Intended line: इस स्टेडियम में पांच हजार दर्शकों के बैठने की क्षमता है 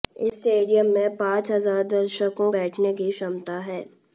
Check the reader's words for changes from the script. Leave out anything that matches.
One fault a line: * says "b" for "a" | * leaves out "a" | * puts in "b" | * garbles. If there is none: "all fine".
* leaves out "के"